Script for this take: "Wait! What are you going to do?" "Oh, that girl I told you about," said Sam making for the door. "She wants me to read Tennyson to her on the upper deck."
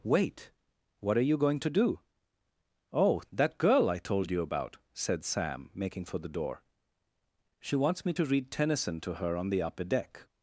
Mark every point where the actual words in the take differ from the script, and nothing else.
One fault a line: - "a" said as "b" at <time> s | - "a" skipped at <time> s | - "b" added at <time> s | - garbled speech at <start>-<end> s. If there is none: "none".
none